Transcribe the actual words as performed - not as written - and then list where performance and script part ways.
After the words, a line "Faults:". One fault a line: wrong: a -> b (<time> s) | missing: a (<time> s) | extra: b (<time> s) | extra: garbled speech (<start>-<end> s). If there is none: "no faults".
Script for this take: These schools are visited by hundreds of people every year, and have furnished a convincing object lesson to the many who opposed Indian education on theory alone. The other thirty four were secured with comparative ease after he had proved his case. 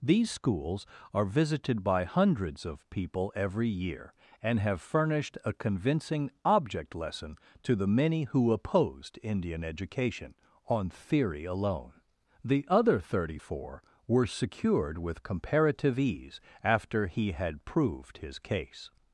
These schools are visited by hundreds of people every year, and have furnished a convincing object lesson to the many who opposed Indian education on theory alone. The other thirty four were secured with comparative ease after he had proved his case.
Faults:
no faults